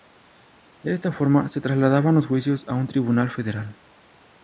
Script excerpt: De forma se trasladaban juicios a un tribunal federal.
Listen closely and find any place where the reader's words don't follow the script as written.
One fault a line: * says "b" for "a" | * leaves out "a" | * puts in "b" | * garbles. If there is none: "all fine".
* puts in "esta"
* puts in "los"